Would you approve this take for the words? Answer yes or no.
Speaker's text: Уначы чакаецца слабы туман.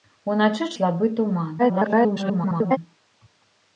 no